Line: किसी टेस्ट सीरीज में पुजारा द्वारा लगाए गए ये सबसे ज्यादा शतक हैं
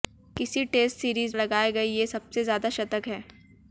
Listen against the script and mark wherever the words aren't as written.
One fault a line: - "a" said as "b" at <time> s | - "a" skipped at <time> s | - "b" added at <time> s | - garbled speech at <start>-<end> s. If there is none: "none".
- "में पुजारा द्वारा" skipped at 1.4 s